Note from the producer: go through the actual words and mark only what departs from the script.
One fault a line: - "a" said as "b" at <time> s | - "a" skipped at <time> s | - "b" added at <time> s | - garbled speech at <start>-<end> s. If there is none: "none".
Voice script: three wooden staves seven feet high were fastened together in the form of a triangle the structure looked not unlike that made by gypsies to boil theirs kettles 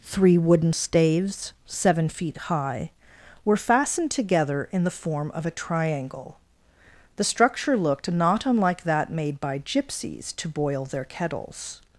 - "theirs" said as "their" at 10.9 s